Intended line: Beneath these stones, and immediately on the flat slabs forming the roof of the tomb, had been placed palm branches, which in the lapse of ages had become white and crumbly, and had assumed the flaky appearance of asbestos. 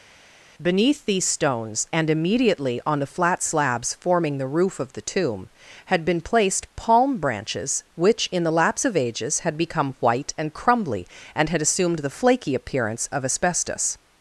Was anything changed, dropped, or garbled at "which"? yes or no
no